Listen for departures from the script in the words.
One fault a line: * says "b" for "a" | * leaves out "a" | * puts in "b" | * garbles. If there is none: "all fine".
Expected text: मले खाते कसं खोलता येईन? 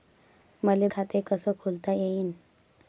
all fine